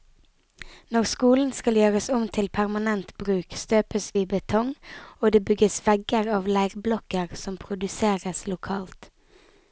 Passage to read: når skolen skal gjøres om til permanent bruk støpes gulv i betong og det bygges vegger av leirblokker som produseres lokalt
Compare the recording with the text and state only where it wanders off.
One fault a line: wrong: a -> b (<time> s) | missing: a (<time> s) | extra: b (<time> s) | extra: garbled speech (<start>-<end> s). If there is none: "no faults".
missing: gulv (4.1 s)